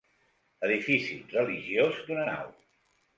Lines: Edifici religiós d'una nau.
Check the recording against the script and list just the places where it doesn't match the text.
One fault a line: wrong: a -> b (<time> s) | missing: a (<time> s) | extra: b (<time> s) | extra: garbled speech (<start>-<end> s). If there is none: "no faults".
no faults